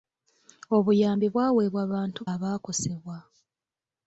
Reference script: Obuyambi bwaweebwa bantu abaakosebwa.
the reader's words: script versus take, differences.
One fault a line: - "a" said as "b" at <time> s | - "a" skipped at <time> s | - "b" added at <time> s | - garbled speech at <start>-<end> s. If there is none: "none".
none